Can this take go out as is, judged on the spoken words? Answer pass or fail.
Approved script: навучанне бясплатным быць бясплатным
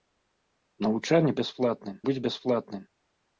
pass